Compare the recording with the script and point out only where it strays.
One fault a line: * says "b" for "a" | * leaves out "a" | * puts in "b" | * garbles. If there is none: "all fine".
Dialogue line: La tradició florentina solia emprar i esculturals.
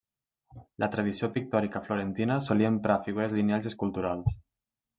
* puts in "pictòrica"
* puts in "figures lineals"